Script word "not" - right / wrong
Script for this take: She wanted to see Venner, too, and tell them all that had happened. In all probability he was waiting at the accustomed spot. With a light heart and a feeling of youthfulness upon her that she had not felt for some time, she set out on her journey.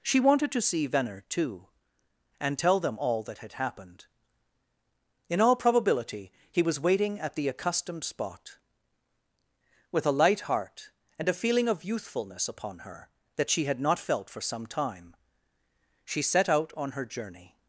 right